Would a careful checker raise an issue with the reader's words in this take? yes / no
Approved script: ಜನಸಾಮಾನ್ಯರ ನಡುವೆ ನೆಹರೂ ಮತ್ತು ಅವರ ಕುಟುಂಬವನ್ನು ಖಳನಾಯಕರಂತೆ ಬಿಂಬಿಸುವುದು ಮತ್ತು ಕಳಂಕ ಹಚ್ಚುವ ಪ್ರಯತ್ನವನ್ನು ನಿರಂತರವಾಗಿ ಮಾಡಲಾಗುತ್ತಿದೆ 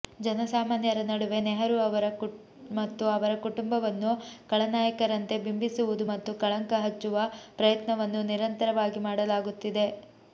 no